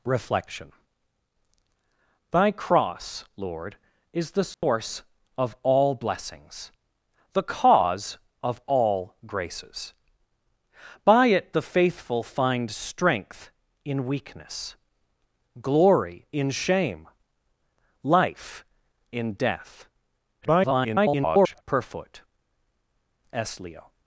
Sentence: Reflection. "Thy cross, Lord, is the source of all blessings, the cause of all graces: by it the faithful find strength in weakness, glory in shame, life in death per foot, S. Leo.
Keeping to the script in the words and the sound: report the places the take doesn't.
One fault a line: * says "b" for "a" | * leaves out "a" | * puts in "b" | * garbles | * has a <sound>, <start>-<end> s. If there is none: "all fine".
* has a dropout, 4.5-4.6 s
* garbles